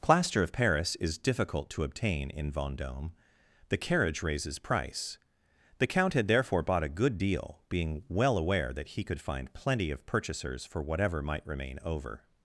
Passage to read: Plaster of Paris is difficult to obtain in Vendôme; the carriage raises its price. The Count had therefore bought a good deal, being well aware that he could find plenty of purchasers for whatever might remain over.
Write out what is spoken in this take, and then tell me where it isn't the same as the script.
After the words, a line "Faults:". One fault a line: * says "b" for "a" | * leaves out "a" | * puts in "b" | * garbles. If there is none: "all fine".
Plaster of Paris is difficult to obtain in Vendôme; the carriage raises price. The Count had therefore bought a good deal, being well aware that he could find plenty of purchasers for whatever might remain over.
Faults:
* leaves out "its"